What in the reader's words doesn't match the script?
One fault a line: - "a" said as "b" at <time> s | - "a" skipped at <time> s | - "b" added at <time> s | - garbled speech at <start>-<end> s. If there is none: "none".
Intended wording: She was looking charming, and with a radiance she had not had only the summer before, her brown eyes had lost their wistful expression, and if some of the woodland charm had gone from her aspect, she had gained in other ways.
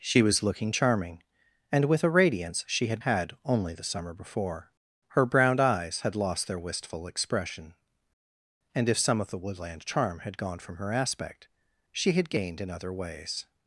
- "not" skipped at 3.0 s